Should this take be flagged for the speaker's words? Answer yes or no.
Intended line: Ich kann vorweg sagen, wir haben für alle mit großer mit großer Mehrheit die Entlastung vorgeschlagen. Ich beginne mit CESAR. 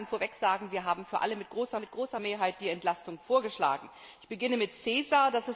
no